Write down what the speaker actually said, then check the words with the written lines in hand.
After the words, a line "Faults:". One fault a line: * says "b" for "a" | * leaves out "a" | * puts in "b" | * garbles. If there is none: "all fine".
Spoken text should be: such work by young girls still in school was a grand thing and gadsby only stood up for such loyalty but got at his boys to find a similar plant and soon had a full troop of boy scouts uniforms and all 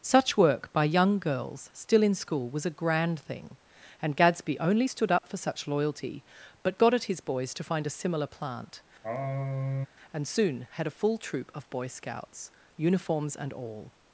such work by young girls still in school was a grand thing and gadsby only stood up for such loyalty but got at his boys to find a similar plant and soon had a full troop of boy scouts uniforms and all
Faults:
all fine